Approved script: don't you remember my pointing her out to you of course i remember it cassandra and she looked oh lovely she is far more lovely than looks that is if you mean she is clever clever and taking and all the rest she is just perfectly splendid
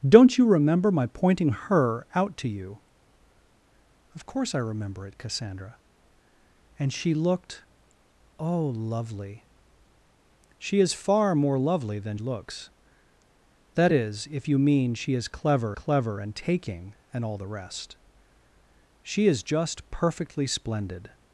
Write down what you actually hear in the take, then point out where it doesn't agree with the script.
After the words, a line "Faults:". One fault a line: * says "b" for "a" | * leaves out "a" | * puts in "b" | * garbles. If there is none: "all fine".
don't you remember my pointing her out to you of course i remember it cassandra and she looked oh lovely she is far more lovely than looks that is if you mean she is clever clever and taking and all the rest she is just perfectly splendid
Faults:
all fine